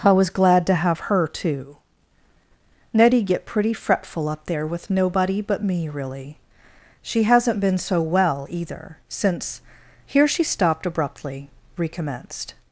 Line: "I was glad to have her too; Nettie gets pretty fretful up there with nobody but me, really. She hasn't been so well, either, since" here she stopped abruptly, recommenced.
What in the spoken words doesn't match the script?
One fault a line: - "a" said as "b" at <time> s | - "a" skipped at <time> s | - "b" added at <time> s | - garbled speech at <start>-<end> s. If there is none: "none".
- "gets" said as "get" at 3.2 s